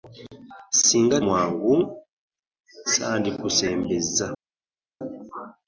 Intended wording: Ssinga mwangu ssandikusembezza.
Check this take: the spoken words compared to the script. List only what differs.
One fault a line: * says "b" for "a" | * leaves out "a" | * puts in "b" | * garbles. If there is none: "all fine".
all fine